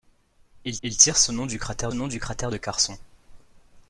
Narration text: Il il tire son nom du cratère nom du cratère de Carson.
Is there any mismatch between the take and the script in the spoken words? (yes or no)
no